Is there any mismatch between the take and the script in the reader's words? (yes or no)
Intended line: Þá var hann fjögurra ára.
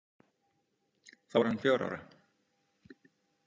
no